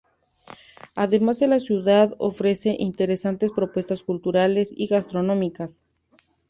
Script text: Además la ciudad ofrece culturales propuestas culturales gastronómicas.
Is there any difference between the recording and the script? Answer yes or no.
yes